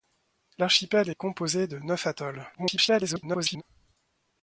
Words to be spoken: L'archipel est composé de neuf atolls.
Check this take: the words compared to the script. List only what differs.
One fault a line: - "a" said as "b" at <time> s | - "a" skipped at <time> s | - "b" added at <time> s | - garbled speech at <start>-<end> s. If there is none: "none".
- garbled speech at 2.5-3.6 s